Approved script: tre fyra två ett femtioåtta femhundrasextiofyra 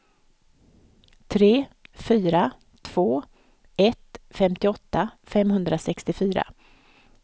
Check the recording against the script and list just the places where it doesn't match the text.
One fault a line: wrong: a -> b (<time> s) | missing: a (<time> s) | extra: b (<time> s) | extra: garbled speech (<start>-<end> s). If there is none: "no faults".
no faults